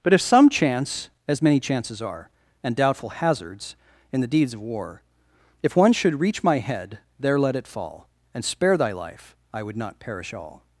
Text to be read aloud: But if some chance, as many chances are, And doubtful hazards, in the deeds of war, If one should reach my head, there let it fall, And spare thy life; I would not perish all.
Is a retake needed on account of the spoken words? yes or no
no